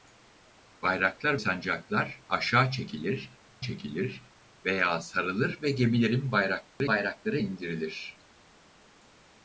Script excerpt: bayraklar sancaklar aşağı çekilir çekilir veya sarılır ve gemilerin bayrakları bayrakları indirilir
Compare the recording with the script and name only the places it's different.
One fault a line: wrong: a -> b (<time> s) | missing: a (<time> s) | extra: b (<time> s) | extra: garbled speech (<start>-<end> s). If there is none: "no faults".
no faults